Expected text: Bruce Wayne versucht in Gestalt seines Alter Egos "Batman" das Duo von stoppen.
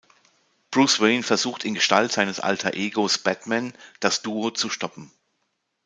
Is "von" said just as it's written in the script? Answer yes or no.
no